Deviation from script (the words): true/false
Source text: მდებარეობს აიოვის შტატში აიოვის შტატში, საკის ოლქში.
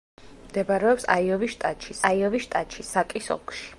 false